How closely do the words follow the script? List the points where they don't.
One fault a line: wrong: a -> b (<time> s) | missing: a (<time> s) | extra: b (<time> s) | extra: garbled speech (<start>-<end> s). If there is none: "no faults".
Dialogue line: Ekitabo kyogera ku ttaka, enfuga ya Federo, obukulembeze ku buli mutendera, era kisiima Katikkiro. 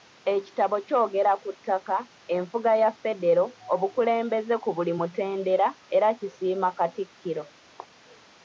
no faults